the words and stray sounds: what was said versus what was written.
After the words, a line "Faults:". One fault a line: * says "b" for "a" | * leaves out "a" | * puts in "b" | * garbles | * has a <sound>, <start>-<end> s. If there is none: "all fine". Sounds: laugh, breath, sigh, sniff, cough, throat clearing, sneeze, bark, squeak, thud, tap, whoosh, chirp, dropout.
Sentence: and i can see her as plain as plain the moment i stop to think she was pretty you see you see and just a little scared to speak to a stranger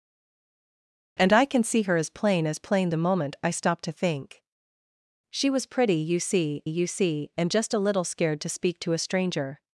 and i can see her as plain as plain the moment i stop to think she was pretty you see you see and just a little scared to speak to a stranger
Faults:
all fine